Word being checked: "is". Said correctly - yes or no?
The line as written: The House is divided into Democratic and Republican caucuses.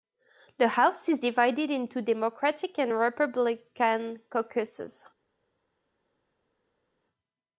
yes